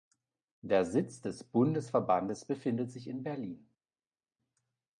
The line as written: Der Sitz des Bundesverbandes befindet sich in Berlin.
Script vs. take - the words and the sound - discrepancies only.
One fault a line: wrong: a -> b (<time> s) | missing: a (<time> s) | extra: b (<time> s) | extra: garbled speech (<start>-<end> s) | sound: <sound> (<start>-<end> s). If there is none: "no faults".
no faults